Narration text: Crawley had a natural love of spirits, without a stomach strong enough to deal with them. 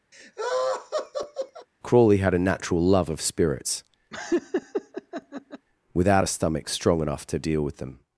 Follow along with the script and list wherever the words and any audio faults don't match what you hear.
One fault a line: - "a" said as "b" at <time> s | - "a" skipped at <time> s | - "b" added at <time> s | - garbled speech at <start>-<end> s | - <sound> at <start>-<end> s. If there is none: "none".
- laugh at 0.1-1.7 s
- laugh at 4.1-5.7 s